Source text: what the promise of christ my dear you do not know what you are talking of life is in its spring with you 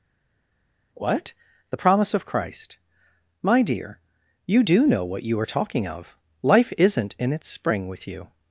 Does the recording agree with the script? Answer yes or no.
no